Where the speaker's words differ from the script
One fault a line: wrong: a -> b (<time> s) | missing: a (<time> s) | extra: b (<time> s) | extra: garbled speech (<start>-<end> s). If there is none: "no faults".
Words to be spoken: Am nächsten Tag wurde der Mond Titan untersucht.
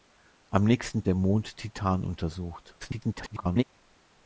missing: Tag wurde (1.1 s)
extra: garbled speech (2.8-3.6 s)